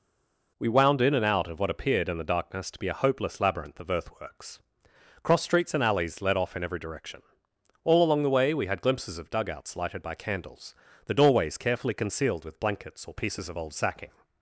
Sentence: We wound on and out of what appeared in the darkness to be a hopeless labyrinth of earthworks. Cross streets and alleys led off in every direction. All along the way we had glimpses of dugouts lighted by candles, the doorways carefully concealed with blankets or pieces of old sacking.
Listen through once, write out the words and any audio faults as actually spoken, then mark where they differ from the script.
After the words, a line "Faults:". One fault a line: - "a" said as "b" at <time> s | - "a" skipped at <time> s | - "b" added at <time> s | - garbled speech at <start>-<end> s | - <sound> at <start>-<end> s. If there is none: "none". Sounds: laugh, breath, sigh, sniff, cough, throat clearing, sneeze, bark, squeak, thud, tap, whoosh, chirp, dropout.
We wound in and out of what appeared in the darkness to be a hopeless labyrinth of earthworks. Cross streets and alleys led off in every direction. All along the way we had glimpses of dugouts lighted by candles, the doorways carefully concealed with blankets or pieces of old sacking.
Faults:
- "on" said as "in" at 1.0 s